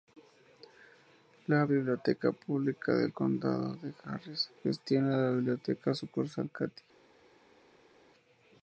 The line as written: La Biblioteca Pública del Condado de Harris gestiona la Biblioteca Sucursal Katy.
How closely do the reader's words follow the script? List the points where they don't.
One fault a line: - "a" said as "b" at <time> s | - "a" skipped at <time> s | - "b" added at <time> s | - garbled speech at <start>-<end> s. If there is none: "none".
none